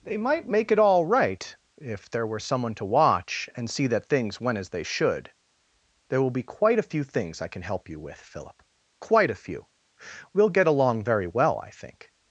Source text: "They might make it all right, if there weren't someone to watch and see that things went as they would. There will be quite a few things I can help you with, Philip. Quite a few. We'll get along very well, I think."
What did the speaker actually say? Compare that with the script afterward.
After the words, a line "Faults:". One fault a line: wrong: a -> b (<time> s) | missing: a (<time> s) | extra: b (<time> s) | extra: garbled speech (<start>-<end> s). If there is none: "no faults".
"They might make it all right, if there were someone to watch and see that things went as they should. There will be quite a few things I can help you with, Philip. Quite a few. We'll get along very well, I think."
Faults:
wrong: weren't -> were (2.2 s)
wrong: would -> should (4.8 s)